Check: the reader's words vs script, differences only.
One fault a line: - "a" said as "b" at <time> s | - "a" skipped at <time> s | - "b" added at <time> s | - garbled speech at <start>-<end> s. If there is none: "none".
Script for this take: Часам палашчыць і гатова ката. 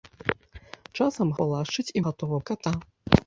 none